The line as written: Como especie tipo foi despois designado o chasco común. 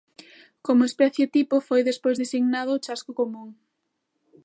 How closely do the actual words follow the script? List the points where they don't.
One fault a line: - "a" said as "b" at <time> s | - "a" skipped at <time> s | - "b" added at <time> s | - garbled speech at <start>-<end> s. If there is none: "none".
none